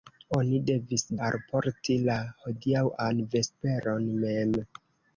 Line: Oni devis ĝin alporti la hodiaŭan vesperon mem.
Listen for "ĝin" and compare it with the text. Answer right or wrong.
wrong